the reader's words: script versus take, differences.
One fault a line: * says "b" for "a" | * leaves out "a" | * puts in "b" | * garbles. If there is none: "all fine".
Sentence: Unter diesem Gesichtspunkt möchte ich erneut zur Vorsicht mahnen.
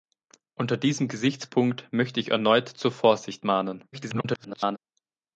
* garbles